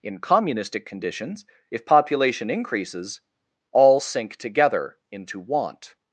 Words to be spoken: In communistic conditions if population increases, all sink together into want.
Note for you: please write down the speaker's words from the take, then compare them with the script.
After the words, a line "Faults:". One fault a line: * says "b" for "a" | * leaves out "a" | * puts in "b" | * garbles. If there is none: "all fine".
In communistic conditions if population increases, all sink together into want.
Faults:
all fine